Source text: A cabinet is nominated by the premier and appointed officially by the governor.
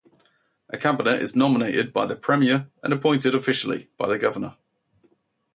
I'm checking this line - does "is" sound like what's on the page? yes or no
yes